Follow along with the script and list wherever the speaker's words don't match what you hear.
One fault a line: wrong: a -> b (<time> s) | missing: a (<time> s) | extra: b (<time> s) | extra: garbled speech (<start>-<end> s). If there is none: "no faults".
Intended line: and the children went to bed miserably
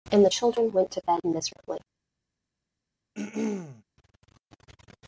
no faults